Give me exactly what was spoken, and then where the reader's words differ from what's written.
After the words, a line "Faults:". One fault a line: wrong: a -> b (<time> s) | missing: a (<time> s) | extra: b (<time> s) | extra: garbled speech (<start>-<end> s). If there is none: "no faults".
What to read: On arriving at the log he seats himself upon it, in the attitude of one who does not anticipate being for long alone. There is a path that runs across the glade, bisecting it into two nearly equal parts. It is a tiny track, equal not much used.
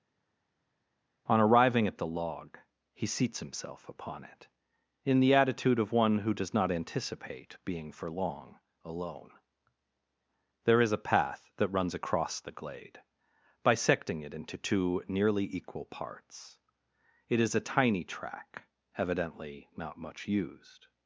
On arriving at the log he seats himself upon it, in the attitude of one who does not anticipate being for long alone. There is a path that runs across the glade, bisecting it into two nearly equal parts. It is a tiny track, evidently not much used.
Faults:
wrong: equal -> evidently (18.9 s)